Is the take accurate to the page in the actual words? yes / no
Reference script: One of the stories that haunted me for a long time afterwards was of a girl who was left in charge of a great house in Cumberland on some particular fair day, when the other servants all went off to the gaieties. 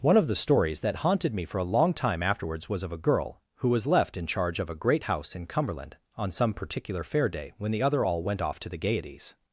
no